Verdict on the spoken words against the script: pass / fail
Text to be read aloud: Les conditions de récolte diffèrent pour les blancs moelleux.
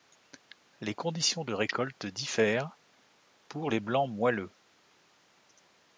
pass